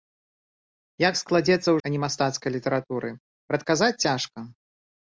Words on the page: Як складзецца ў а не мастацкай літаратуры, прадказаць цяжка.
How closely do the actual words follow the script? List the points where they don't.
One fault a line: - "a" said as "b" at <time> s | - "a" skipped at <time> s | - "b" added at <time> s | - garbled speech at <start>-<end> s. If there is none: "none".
none